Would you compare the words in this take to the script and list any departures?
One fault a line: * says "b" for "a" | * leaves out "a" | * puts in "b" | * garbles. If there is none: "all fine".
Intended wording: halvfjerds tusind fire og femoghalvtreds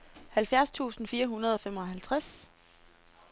* puts in "hundrede"